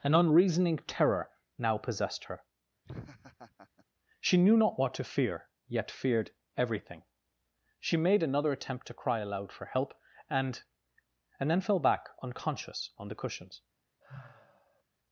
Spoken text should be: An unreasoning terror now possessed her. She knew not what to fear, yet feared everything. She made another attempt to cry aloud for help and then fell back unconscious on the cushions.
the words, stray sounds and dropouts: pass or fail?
fail